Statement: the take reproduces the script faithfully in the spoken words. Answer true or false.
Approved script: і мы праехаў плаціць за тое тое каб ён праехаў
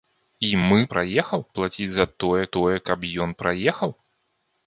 true